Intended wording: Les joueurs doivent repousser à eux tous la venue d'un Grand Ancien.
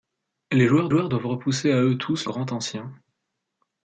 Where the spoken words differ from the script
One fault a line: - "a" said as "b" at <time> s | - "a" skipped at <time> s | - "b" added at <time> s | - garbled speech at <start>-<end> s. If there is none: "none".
- "joueurs" added at 0.9 s
- "la venue d'un" skipped at 2.3 s